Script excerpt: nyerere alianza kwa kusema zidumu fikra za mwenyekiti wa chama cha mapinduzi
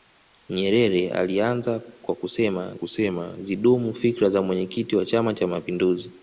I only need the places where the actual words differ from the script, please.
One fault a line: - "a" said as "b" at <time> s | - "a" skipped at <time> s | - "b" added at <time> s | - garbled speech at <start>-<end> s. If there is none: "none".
- "kusema" added at 2.7 s